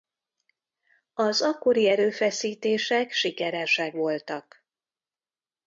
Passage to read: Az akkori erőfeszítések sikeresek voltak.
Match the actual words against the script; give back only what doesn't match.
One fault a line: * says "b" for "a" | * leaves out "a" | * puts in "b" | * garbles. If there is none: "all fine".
all fine